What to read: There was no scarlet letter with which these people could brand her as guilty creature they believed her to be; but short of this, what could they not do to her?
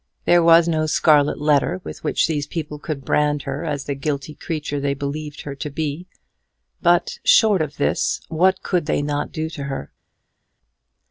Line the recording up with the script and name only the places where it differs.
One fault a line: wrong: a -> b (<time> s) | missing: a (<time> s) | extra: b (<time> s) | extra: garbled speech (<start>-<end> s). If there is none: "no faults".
extra: the (3.8 s)